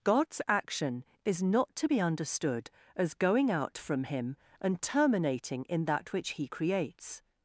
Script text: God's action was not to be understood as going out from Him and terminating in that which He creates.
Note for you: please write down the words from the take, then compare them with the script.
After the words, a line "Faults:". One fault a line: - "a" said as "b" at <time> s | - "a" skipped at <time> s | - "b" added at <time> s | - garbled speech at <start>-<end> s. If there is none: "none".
God's action is not to be understood as going out from Him and terminating in that which He creates.
Faults:
- "was" said as "is" at 1.2 s